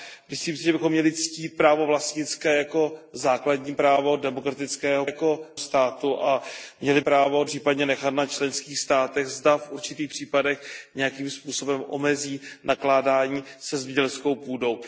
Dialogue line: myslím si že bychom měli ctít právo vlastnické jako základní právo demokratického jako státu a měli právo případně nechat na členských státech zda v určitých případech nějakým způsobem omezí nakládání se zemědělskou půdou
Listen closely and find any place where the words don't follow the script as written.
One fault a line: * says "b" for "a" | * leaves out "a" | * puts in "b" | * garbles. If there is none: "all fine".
all fine